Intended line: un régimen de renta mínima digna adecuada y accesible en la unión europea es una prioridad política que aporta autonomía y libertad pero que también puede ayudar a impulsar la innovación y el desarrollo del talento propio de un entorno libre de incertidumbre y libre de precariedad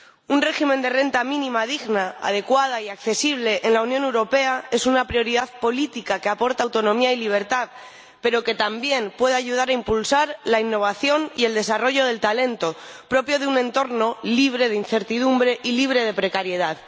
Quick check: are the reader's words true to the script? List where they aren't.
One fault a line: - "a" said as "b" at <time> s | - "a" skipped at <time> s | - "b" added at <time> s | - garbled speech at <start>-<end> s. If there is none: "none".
none